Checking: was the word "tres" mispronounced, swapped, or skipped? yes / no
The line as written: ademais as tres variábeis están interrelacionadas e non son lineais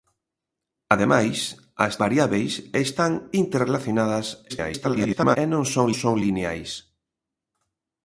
yes